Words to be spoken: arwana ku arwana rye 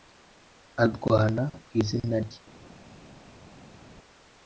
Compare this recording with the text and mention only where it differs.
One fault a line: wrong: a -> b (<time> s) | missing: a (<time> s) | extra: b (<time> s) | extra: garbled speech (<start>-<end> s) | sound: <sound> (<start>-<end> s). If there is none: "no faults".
wrong: arwana -> izina (1.8 s)